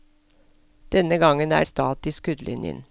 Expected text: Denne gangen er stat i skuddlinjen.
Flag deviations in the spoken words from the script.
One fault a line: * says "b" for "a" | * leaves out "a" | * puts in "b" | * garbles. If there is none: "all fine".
all fine